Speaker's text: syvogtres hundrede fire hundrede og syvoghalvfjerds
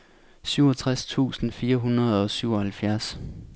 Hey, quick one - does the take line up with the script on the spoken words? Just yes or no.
no